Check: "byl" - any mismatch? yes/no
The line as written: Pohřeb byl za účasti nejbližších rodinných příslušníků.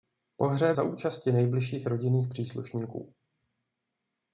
yes